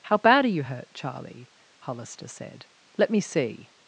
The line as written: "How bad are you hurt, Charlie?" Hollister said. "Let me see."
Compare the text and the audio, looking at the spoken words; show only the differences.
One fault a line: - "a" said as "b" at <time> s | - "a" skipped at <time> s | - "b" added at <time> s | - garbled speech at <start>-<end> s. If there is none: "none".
none